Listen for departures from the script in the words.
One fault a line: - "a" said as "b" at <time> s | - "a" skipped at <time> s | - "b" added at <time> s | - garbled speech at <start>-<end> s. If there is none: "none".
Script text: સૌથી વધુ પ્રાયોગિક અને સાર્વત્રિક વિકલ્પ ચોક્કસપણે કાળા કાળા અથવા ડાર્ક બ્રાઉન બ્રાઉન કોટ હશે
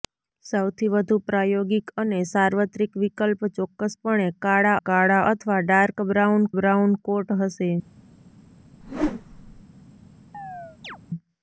none